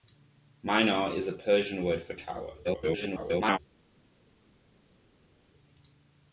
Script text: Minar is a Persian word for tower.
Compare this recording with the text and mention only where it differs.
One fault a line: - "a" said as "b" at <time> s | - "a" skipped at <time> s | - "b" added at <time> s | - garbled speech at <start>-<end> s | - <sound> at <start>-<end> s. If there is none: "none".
- garbled speech at 2.6-3.6 s